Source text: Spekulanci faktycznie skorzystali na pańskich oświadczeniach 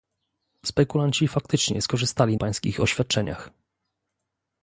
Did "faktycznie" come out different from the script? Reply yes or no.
no